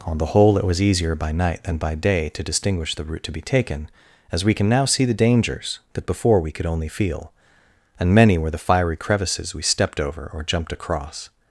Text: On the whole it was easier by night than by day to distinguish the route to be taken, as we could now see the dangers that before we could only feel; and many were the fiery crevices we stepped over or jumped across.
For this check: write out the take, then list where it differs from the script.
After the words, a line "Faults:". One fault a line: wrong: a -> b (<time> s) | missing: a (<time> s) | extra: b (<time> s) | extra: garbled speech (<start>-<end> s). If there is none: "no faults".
On the whole it was easier by night than by day to distinguish the route to be taken, as we can now see the dangers that before we could only feel; and many were the fiery crevices we stepped over or jumped across.
Faults:
wrong: could -> can (4.5 s)